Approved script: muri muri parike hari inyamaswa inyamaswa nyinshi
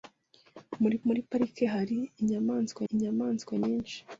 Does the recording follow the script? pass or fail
pass